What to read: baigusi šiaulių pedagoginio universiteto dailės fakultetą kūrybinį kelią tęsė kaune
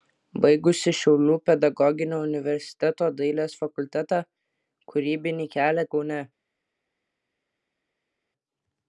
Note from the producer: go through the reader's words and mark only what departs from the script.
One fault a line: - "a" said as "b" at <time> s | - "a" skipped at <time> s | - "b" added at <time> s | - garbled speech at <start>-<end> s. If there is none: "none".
- "tęsė" skipped at 5.9 s